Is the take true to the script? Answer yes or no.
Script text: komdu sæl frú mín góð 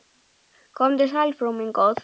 yes